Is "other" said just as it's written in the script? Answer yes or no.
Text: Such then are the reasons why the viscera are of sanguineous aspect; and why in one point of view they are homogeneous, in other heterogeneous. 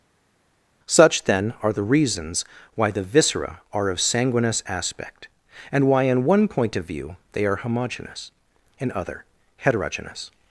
yes